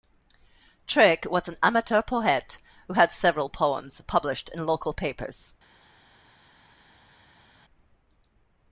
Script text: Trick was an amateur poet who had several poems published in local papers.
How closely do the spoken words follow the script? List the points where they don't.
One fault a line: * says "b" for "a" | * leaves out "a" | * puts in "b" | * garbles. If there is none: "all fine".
all fine